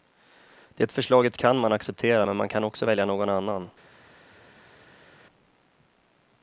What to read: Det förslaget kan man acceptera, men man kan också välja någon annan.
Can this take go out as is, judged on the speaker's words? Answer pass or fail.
pass